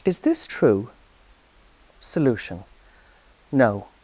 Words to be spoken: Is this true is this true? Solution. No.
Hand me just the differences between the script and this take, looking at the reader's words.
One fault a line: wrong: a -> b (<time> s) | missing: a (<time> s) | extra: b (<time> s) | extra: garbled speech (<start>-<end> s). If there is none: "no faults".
missing: is this true (0.9 s)